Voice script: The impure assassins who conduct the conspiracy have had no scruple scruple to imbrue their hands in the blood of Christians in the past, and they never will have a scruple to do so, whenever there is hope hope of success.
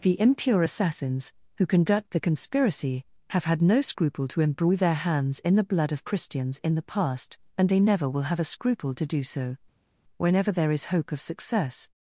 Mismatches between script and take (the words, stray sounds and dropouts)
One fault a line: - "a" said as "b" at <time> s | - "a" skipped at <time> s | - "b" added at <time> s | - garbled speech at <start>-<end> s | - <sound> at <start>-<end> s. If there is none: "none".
- "scruple" skipped at 4.3 s
- "hope" skipped at 11.1 s